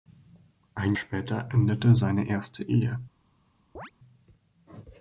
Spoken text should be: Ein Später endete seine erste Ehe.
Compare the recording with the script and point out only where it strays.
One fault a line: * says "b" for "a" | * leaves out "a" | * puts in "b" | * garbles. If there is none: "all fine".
all fine